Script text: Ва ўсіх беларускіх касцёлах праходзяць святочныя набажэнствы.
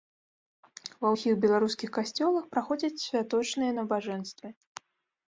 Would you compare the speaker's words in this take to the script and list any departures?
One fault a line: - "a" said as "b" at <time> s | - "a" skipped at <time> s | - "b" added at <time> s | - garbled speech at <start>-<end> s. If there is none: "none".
none